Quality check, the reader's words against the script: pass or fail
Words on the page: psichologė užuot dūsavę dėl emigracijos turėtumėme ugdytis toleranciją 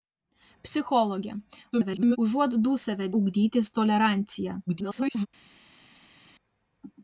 fail